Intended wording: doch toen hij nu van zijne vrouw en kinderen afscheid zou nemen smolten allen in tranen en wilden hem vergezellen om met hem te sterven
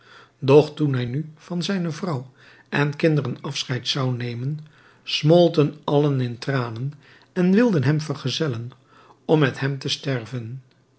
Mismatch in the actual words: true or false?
false